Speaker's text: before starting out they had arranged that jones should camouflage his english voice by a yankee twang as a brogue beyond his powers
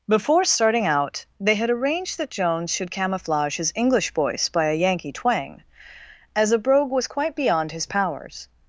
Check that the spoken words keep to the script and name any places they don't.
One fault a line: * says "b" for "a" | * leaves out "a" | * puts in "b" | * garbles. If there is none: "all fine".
* puts in "was quite"